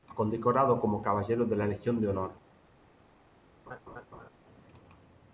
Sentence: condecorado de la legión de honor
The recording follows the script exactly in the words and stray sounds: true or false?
false